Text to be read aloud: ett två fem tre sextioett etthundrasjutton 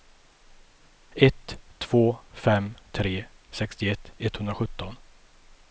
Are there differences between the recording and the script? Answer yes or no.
no